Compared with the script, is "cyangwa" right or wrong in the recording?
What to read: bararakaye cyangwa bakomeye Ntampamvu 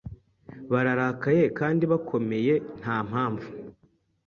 wrong